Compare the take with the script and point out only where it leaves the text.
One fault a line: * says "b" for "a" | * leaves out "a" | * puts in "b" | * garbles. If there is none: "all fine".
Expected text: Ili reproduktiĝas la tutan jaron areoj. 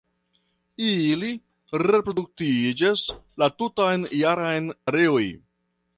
all fine